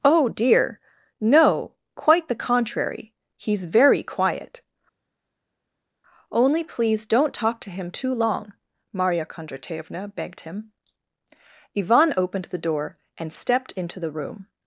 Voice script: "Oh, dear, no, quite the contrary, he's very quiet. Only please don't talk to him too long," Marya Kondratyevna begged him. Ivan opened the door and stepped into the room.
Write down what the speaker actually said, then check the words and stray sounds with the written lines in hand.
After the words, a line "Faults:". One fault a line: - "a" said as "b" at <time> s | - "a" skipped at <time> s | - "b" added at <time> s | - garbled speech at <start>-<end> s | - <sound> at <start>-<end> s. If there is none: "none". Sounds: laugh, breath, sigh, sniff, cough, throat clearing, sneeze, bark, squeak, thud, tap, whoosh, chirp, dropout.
"Oh, dear, no, quite the contrary, he's very quiet. Only please don't talk to him too long," Marya Kondratyevna begged him. Ivan opened the door and stepped into the room.
Faults:
none